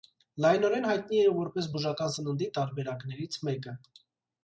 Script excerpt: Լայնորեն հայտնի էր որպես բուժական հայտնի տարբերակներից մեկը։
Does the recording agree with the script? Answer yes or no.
no